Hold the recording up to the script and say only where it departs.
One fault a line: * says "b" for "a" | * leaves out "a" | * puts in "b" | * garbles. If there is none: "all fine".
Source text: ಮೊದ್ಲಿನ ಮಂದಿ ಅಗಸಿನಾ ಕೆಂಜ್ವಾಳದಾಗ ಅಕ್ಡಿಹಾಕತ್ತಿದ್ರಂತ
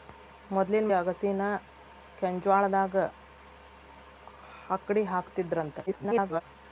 * leaves out "ಮಂದಿ"
* garbles